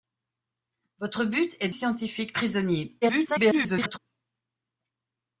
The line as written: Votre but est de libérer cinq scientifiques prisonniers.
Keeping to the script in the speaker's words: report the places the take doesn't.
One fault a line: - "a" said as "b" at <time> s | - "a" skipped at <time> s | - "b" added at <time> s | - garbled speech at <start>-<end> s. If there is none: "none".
- "de libérer cinq" skipped at 1.7 s
- garbled speech at 3.0-4.0 s